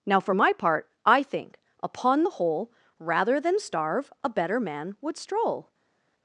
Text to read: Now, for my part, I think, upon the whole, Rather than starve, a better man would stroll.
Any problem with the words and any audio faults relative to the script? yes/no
no